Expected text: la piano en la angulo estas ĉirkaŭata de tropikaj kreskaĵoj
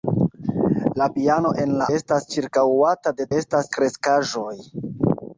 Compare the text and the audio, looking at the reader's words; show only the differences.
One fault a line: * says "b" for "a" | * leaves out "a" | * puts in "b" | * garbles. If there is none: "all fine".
* leaves out "angulo"
* says "estas" for "tropikaj"